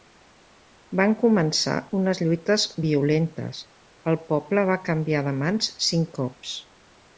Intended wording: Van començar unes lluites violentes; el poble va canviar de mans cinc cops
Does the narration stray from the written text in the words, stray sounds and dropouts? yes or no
no